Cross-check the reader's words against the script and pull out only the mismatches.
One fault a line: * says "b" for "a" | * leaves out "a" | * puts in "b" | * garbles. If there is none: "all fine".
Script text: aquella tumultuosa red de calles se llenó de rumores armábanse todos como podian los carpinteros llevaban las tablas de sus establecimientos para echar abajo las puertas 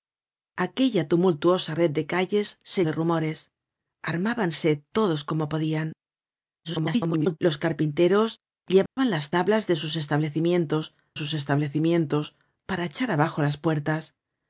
* leaves out "llenó"
* garbles
* puts in "sus establecimientos"